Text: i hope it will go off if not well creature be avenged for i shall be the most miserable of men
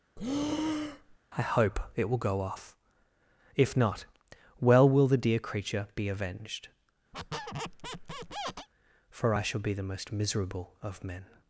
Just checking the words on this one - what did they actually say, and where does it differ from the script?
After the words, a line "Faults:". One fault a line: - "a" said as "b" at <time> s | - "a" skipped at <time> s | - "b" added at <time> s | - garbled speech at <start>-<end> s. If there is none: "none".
i hope it will go off if not well will the dear creature be avenged for i shall be the most miserable of men
Faults:
- "will the dear" added at 4.9 s